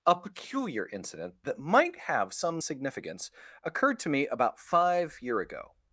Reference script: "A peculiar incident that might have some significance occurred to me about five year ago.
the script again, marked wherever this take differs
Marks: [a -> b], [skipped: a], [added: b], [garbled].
"A peculiar incident that might have some significance occurred to me about five year ago.